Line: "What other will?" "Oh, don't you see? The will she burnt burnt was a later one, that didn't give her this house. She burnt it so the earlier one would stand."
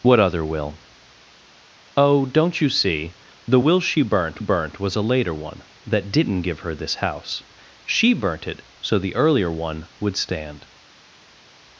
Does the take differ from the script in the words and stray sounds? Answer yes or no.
no